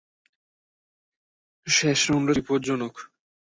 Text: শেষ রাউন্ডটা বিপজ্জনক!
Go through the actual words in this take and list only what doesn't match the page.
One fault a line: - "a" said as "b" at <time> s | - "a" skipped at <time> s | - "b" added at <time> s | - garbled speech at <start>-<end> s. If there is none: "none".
none